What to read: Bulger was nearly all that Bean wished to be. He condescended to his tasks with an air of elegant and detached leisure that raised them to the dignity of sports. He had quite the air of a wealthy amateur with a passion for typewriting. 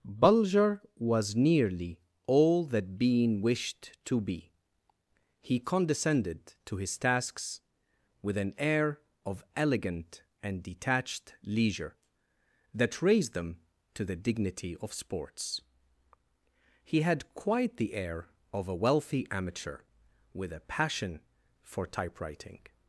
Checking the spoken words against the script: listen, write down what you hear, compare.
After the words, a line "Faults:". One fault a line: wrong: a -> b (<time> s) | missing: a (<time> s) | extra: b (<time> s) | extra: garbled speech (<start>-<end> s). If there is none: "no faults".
Bulger was nearly all that Bean wished to be. He condescended to his tasks with an air of elegant and detached leisure that raised them to the dignity of sports. He had quite the air of a wealthy amateur with a passion for typewriting.
Faults:
no faults